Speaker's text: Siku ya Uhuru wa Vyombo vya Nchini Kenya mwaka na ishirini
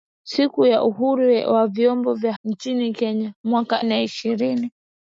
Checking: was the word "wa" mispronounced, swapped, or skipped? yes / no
no